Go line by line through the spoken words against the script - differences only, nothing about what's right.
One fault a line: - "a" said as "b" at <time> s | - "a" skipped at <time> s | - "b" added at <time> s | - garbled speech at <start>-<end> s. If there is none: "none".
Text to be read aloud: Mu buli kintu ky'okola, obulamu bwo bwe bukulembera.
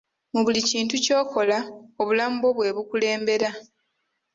none